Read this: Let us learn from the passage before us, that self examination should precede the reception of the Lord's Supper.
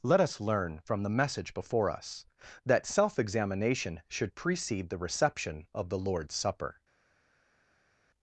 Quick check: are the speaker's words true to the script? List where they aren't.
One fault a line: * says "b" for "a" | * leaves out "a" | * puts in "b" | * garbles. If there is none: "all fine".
* says "message" for "passage"